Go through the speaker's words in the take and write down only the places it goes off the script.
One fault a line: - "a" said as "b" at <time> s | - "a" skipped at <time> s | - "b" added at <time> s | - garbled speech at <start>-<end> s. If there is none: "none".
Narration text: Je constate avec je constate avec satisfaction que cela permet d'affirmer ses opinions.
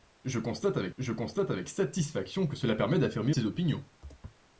none